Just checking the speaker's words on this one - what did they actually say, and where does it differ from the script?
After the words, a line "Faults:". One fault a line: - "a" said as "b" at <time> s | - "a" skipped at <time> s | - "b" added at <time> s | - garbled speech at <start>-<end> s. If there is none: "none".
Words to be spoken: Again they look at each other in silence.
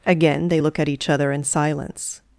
Again they look at each other in silence.
Faults:
none